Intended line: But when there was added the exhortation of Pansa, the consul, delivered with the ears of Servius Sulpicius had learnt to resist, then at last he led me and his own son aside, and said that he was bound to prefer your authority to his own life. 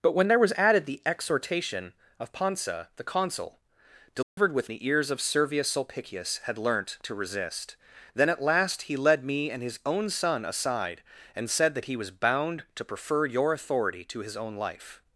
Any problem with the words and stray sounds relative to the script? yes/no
yes